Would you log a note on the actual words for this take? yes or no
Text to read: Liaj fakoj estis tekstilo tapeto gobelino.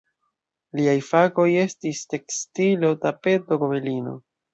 no